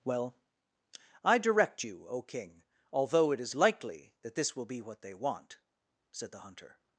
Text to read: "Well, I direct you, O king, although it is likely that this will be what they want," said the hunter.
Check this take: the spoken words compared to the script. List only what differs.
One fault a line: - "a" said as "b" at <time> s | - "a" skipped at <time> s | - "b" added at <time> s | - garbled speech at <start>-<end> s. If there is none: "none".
none